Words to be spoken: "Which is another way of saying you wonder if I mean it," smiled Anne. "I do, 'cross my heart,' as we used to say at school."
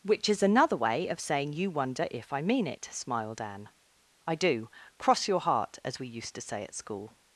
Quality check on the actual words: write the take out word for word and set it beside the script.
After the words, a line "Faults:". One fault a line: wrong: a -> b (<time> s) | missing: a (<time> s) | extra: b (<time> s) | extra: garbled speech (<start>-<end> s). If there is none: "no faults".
"Which is another way of saying you wonder if I mean it," smiled Anne. "I do, 'cross your heart,' as we used to say at school."
Faults:
wrong: my -> your (5.3 s)